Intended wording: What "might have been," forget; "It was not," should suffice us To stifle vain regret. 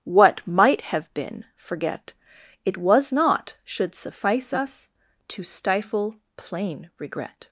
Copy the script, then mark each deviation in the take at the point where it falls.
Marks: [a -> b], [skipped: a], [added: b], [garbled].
What "might have been," forget; "It was not," should suffice us To stifle [vain -> plain] regret.